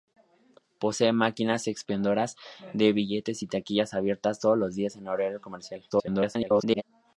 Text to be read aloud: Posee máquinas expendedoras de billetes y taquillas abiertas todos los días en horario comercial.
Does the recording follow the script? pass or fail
fail